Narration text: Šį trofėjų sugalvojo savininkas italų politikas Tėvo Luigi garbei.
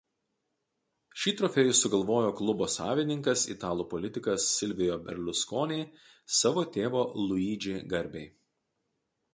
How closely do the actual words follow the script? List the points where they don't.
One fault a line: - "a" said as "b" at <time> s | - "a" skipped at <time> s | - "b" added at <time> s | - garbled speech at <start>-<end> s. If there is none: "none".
- "klubo" added at 2.4 s
- "Silvio Berlusconi savo" added at 4.5 s